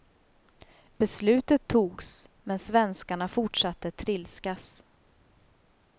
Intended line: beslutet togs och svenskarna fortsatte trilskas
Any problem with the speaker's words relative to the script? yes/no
yes